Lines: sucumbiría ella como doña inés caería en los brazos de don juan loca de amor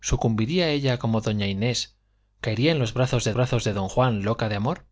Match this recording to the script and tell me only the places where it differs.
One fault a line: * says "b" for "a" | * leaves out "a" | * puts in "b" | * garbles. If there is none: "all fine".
* puts in "brazos de"